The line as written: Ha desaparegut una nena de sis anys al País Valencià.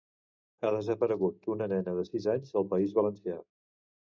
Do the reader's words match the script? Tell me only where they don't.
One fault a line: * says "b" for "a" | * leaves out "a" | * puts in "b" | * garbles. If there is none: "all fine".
all fine